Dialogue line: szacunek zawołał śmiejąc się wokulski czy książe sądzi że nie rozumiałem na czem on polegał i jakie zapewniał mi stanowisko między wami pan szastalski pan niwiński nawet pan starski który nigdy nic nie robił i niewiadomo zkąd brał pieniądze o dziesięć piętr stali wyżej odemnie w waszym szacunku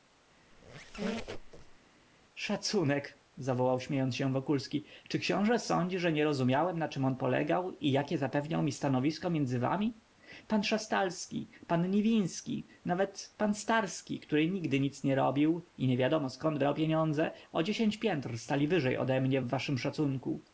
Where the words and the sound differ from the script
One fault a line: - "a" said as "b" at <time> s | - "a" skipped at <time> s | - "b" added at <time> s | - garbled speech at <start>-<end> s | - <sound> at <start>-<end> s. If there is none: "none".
- squeak at 0.5-1.8 s